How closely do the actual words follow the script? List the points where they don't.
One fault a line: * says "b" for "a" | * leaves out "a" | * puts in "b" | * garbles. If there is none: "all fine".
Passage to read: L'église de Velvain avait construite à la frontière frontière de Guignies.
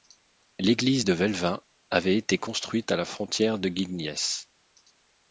* puts in "été"
* leaves out "frontière"